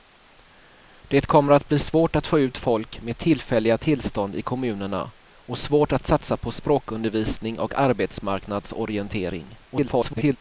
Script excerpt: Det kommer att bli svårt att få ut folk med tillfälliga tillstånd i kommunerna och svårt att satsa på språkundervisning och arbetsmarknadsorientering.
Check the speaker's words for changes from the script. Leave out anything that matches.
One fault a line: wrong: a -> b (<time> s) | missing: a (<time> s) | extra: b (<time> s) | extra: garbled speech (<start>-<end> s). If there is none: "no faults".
extra: garbled speech (9.7-10.4 s)